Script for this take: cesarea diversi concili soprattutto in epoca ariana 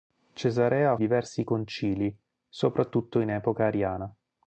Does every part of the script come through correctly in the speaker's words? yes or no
yes